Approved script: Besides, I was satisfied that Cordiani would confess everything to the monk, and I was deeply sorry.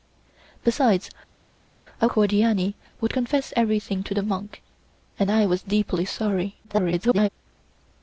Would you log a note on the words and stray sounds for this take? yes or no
yes